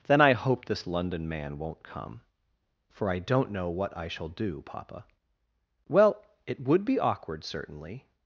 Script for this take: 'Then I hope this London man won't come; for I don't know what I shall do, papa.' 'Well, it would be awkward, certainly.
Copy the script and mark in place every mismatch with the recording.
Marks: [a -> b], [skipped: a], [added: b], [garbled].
'Then I hope this London man won't come; for I don't know what I shall do, papa.' 'Well, it would be awkward, certainly.